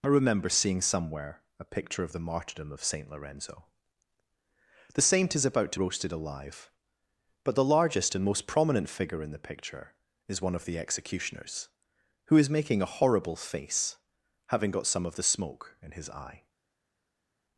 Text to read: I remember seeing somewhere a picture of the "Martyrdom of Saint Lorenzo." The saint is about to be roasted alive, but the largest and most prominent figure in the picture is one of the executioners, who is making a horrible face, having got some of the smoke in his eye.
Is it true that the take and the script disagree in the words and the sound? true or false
true